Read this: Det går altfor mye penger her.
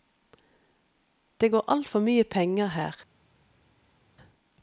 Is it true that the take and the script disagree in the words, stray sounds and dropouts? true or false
false